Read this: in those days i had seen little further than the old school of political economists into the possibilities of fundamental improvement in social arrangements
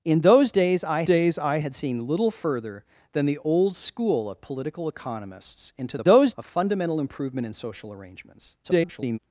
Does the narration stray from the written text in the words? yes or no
yes